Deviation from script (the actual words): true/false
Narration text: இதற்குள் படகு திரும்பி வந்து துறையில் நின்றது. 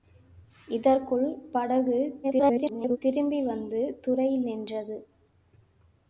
true